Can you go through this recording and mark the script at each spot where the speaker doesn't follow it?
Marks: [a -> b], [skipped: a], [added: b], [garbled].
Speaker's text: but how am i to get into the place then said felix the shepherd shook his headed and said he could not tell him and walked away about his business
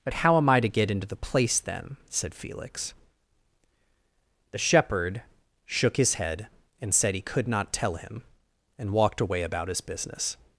but how am i to get into the place then said felix the shepherd shook his [headed -> head] and said he could not tell him and walked away about his business